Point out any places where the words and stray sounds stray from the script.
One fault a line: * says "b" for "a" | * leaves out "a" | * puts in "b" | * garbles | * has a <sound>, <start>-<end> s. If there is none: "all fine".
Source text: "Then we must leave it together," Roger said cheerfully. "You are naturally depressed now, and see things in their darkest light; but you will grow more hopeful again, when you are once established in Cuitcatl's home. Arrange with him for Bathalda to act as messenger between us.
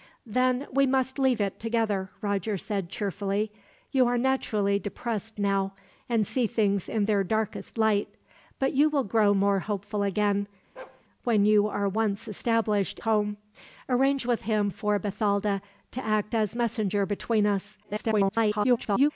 * has a bark, 10.8-11.0 s
* leaves out "in Cuitcatl's"
* garbles